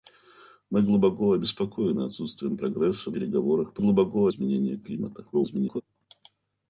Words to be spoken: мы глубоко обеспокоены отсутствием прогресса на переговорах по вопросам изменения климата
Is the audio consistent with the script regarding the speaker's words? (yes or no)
no